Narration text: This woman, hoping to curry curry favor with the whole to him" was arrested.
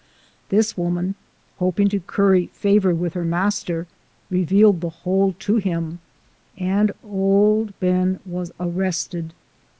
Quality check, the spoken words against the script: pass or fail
fail